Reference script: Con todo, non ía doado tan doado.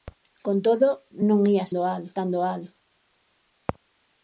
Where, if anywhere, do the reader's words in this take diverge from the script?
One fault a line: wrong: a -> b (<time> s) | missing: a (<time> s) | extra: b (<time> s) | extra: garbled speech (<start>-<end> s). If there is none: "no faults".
no faults